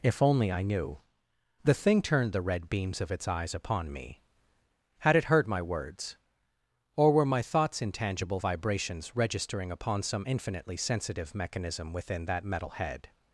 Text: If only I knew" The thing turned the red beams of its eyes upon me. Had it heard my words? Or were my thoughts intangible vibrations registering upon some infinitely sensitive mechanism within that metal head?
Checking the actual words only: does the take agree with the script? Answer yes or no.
yes